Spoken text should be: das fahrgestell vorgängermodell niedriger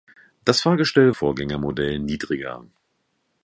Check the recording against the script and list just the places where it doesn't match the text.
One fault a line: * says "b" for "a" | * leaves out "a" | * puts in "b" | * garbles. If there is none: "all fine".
all fine